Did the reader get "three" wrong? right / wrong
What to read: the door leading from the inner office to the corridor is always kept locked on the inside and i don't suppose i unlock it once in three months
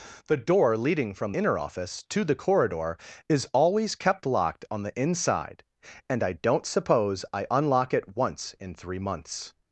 right